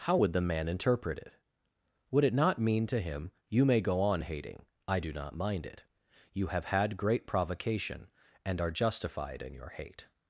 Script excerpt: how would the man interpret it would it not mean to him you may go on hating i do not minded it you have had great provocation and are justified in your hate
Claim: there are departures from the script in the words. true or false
true